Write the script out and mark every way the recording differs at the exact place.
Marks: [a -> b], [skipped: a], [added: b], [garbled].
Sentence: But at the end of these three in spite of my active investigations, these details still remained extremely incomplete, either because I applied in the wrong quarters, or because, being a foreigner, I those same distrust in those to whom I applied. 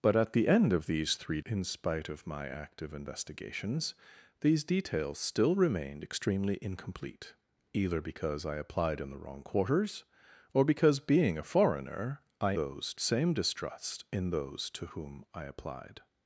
But at the end of these three in spite of my active investigations, these details still remained extremely incomplete, either because I applied in the wrong quarters, or because, being a foreigner, I those same distrust in those to whom I applied.